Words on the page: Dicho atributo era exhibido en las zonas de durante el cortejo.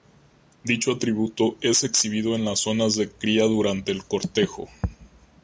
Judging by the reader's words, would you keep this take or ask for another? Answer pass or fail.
fail